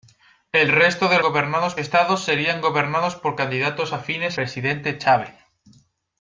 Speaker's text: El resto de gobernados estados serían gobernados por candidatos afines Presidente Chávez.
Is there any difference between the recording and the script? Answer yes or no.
no